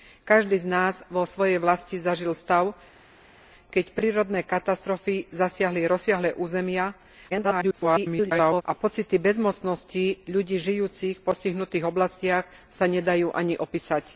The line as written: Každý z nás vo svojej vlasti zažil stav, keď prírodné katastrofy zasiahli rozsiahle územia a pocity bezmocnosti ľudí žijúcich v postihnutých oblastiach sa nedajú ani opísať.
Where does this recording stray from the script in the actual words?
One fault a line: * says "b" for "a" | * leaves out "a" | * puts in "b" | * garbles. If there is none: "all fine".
* garbles